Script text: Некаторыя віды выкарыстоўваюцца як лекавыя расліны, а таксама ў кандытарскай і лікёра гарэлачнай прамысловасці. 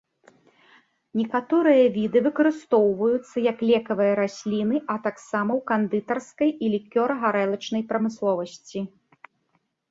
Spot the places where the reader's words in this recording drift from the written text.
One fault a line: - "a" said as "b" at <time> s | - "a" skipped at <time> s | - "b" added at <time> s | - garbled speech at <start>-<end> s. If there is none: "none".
none